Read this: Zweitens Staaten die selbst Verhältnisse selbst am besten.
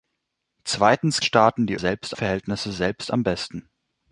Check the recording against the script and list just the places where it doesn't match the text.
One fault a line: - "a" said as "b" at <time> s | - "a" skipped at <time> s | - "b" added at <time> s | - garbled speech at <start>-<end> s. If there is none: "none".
none